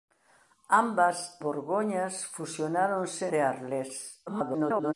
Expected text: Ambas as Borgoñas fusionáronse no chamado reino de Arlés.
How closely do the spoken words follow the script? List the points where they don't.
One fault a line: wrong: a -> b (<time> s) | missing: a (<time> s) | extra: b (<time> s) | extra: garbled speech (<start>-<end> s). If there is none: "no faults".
missing: as (1.4 s)
missing: no chamado reino (3.3 s)
extra: garbled speech (4.3-4.9 s)